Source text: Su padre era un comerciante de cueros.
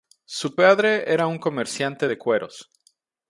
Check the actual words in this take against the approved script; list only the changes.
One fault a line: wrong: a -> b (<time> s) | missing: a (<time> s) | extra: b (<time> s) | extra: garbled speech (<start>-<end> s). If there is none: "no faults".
no faults